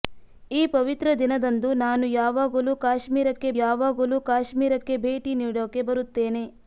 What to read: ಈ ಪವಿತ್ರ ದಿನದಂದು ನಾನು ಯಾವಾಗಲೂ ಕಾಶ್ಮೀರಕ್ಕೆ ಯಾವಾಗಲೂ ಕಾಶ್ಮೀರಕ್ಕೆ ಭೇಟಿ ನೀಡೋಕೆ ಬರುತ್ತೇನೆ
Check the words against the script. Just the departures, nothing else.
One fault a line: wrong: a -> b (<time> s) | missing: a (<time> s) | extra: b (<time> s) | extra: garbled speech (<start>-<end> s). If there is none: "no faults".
no faults